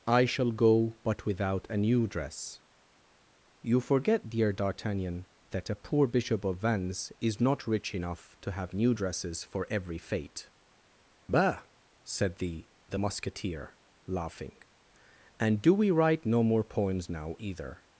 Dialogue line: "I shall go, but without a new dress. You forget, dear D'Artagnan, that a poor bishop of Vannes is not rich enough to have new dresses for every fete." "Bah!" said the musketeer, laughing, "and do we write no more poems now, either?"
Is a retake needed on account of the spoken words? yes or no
yes